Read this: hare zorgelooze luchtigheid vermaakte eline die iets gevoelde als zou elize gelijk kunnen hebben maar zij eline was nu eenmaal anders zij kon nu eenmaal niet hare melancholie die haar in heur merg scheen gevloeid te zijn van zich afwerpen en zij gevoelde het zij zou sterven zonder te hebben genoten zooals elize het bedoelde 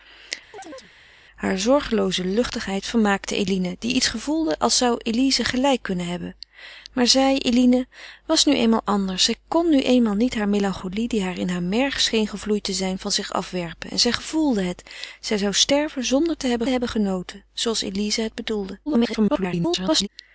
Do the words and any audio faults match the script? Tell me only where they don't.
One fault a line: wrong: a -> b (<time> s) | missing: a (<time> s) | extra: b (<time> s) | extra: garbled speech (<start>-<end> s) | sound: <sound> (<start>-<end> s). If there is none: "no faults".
sound: chirp (0.5-0.9 s)
extra: hebben (16.7 s)
extra: garbled speech (18.9-20.1 s)